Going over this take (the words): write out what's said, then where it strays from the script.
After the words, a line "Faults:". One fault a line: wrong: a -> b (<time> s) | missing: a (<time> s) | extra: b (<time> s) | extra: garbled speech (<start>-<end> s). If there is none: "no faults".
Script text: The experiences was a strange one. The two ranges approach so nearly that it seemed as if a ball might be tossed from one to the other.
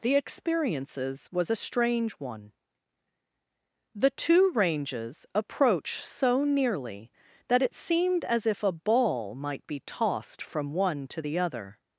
The experiences was a strange one. The two ranges approach so nearly that it seemed as if a ball might be tossed from one to the other.
Faults:
no faults